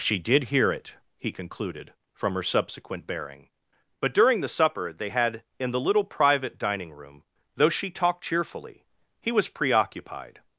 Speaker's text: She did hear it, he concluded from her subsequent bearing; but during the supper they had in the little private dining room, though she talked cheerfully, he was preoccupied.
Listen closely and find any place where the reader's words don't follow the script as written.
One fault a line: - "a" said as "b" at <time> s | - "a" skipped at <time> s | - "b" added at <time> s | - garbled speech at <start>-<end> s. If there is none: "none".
none